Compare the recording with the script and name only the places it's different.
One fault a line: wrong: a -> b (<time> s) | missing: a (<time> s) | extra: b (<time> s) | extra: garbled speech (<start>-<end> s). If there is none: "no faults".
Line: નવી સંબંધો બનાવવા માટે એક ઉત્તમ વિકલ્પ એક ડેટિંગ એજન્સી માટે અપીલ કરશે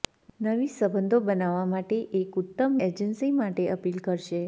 missing: વિકલ્પ એક ડેટિંગ (2.8 s)